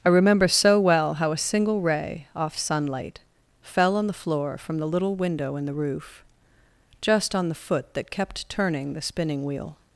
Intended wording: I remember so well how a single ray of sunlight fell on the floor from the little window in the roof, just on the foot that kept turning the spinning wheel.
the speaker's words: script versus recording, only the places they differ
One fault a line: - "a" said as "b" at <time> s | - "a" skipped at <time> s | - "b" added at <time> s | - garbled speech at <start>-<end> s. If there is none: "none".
- "of" said as "off" at 2.3 s